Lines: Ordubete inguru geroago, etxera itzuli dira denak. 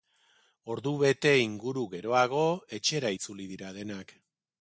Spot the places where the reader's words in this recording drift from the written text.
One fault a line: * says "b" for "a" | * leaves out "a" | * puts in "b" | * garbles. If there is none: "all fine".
all fine